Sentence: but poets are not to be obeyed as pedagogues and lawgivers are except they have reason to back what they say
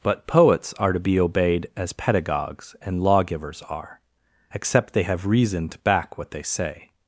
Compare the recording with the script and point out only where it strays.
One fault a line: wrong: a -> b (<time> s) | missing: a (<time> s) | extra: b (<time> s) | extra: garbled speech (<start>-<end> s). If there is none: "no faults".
missing: not (0.9 s)